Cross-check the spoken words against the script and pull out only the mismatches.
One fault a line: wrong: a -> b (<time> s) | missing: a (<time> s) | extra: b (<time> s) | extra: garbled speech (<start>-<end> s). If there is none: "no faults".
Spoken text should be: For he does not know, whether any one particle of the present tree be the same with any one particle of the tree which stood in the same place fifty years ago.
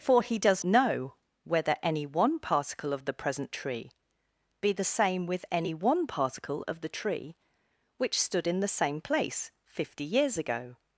missing: not (0.6 s)